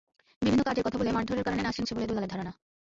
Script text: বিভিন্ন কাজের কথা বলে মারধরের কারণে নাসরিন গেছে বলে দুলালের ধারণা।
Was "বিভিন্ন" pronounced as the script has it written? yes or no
yes